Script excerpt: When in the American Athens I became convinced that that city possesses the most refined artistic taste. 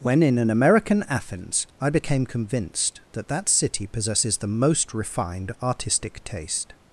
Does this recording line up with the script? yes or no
no